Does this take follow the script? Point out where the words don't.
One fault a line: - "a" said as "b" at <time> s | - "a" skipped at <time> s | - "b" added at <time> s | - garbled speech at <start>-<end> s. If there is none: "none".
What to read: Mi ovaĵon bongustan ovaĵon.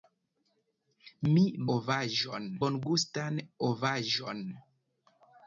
none